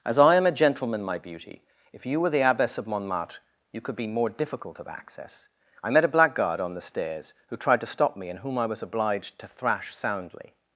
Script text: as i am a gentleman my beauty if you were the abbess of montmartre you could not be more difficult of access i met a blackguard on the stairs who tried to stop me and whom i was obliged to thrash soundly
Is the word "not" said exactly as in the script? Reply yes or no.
no